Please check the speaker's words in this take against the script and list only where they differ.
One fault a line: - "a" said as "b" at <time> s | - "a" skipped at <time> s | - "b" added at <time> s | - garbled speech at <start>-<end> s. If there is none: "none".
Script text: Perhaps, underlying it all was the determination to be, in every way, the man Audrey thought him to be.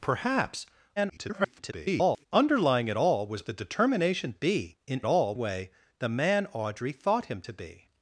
- garbled speech at 1.0-2.3 s
- "to" skipped at 4.3 s
- "every" said as "all" at 5.1 s